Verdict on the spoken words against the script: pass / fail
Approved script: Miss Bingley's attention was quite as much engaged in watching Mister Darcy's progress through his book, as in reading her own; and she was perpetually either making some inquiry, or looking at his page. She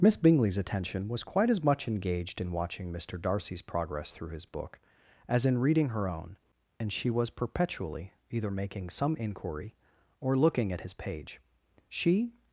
pass